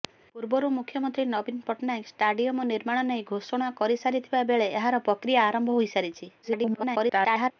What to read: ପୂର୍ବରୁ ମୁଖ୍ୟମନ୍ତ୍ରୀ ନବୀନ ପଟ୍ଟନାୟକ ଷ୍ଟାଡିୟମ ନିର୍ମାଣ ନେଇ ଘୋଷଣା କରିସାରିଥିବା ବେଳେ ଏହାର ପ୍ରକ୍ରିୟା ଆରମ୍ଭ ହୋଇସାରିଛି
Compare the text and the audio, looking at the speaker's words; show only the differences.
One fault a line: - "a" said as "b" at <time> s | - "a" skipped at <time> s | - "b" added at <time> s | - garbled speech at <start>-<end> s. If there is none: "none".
- garbled speech at 6.4-7.5 s